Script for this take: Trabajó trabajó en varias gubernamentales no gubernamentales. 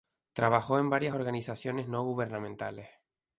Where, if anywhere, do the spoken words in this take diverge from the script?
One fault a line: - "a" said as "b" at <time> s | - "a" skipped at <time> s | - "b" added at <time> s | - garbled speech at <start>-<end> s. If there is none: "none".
- "trabajó" skipped at 0.8 s
- "gubernamentales" said as "organizaciones" at 1.1 s